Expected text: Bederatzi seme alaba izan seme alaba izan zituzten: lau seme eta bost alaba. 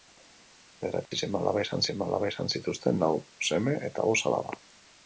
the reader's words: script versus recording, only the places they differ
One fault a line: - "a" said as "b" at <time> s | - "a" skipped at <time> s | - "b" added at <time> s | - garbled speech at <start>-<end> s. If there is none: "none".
none